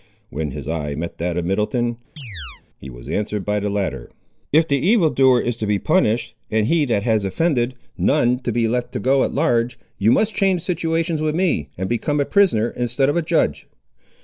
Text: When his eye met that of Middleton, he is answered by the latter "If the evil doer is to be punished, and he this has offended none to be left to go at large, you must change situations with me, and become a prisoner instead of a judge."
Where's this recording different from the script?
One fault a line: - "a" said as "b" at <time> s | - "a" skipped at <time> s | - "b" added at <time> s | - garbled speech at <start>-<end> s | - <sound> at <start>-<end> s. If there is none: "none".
- chirp at 2.2-2.6 s
- "is" said as "was" at 2.9 s
- "this" said as "that" at 6.9 s